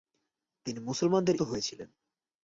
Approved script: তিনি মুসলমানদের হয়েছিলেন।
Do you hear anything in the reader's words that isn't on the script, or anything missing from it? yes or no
no